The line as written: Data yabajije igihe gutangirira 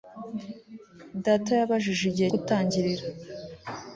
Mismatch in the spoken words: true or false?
false